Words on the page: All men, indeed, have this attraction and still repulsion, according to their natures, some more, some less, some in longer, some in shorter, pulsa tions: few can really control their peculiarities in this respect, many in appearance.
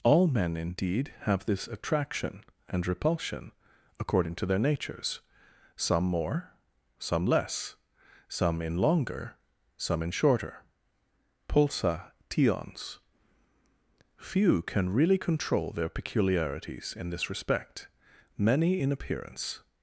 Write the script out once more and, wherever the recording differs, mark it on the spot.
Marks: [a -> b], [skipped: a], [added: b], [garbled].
All men, indeed, have this attraction and [skipped: still] repulsion, according to their natures, some more, some less, some in longer, some in shorter, pulsa tions: few can really control their peculiarities in this respect, many in appearance.